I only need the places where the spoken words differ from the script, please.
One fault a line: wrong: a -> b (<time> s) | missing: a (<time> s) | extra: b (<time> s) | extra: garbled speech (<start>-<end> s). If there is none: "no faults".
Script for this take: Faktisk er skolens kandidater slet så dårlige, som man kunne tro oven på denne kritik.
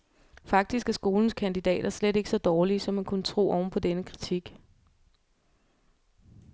extra: ikke (2.1 s)